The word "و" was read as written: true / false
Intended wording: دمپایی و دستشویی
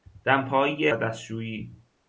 true